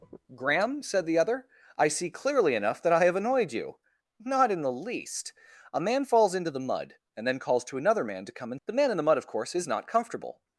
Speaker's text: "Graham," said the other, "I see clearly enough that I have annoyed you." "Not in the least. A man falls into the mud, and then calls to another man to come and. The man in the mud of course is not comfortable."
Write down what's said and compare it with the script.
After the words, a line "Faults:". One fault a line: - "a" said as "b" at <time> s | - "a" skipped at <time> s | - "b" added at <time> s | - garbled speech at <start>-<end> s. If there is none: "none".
"Graham," said the other, "I see clearly enough that I have annoyed you." "Not in the least. A man falls into the mud, and then calls to another man to come and. The man in the mud of course is not comfortable."
Faults:
none